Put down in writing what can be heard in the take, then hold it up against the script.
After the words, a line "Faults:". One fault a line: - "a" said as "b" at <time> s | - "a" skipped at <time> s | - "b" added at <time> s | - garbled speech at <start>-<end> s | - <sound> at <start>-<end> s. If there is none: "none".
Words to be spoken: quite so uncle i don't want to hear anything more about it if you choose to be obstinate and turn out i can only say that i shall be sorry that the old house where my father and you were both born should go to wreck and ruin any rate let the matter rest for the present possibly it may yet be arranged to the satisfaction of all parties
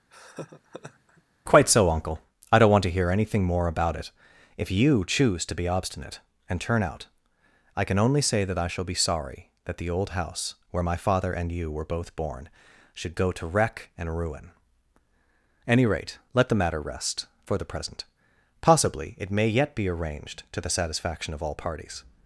quite so uncle i don't want to hear anything more about it if you choose to be obstinate and turn out i can only say that i shall be sorry that the old house where my father and you were both born should go to wreck and ruin any rate let the matter rest for the present possibly it may yet be arranged to the satisfaction of all parties
Faults:
- laugh at 0.1-1.2 s